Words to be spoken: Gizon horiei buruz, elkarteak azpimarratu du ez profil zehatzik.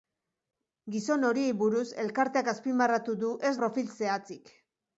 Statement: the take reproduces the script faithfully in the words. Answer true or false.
true